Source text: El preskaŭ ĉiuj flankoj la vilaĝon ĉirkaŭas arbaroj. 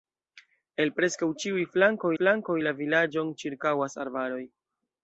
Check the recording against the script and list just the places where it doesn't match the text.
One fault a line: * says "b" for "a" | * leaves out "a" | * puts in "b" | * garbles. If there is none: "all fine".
* puts in "flankoj"